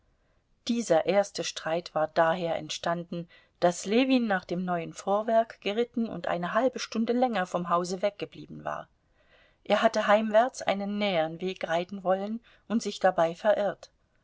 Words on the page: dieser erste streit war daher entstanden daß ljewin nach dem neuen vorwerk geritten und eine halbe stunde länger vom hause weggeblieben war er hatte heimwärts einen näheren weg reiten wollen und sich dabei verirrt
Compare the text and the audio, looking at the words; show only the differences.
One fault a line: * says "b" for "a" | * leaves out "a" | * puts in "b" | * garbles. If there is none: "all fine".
all fine